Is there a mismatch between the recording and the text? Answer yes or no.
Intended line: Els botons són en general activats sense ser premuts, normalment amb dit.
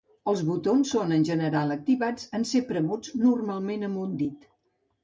yes